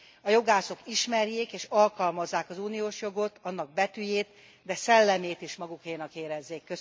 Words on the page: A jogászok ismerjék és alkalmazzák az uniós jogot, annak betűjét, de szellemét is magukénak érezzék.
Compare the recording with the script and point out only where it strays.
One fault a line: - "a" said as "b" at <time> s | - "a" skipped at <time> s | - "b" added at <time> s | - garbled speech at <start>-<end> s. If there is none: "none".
none